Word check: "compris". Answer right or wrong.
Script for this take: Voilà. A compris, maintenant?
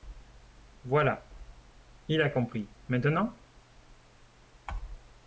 right